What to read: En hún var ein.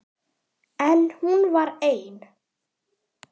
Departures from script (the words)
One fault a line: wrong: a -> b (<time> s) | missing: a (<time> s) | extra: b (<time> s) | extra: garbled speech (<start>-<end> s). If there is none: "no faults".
no faults